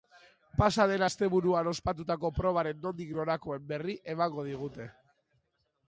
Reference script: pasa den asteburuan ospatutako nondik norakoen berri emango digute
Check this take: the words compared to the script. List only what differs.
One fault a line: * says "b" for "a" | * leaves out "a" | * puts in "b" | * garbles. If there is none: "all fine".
* puts in "probaren"